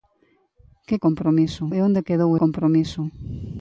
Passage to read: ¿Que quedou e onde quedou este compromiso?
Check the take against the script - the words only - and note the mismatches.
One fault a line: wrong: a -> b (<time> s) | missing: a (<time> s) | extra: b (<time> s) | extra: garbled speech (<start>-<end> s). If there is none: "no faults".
wrong: quedou -> compromiso (1.1 s)
missing: este (2.3 s)